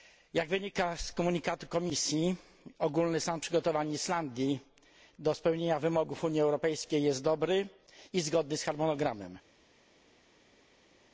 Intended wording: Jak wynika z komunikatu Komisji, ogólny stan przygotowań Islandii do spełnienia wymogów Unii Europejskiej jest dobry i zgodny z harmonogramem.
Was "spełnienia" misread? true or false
false